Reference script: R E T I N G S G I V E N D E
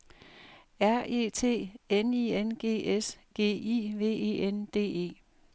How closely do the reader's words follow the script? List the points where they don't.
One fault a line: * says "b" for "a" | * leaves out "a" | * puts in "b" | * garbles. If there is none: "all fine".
* puts in "N"